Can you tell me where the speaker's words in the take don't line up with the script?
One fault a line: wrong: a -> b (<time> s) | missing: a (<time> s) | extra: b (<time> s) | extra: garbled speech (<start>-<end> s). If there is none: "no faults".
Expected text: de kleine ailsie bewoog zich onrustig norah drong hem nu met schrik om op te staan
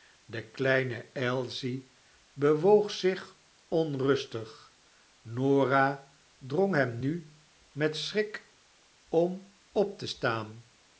no faults